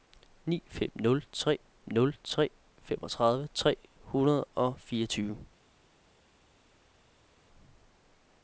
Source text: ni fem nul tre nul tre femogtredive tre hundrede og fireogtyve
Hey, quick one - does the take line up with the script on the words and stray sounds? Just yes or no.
yes